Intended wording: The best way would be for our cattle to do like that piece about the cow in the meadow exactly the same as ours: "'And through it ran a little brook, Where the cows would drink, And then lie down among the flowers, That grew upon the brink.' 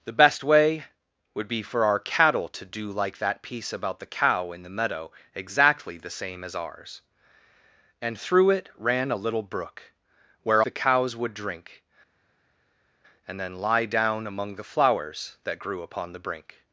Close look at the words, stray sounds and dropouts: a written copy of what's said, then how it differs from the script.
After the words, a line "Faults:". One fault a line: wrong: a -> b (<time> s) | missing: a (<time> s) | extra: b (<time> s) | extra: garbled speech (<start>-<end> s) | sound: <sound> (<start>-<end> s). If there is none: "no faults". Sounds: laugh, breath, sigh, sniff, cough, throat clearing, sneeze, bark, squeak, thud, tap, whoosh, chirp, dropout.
The best way would be for our cattle to do like that piece about the cow in the meadow exactly the same as ours: "'And through it ran a little brook, Where the cows would drink, And then lie down among the flowers, That grew upon the brink.'
Faults:
no faults